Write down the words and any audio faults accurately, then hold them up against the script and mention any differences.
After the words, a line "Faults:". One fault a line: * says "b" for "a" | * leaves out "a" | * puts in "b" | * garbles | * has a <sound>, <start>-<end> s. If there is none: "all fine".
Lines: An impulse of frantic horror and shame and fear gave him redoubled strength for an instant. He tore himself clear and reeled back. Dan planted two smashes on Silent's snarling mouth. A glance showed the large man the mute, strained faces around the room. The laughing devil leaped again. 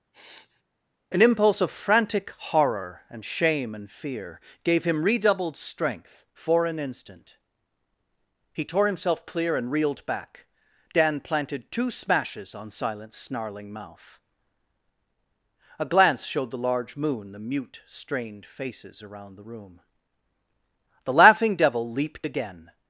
An impulse of frantic horror and shame and fear gave him redoubled strength for an instant. He tore himself clear and reeled back. Dan planted two smashes on Silent's snarling mouth. A glance showed the large moon the mute, strained faces around the room. The laughing devil leaped again.
Faults:
* has a sniff, 0.1-0.6 s
* says "moon" for "man"